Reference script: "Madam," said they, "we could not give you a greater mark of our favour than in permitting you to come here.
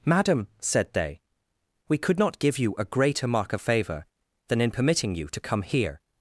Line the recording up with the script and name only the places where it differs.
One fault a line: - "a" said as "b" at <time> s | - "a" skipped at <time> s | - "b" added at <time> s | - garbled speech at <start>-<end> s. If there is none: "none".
- "our" skipped at 3.6 s